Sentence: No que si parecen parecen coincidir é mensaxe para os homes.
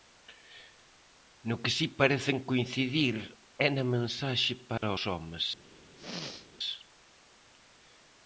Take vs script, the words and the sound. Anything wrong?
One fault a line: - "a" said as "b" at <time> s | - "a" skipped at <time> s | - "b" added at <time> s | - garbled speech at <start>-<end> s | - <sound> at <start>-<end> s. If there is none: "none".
- "parecen" skipped at 2.4 s
- "na" added at 3.8 s
- dropout at 4.8-4.8 s
- throat clearing at 5.9-6.5 s